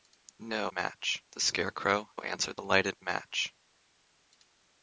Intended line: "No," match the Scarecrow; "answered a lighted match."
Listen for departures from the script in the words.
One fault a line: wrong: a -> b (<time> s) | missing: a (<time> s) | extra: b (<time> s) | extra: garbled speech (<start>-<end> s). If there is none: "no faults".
no faults